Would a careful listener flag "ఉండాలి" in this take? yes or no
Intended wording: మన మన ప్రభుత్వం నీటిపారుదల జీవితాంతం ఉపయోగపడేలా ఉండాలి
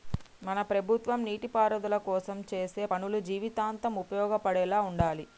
no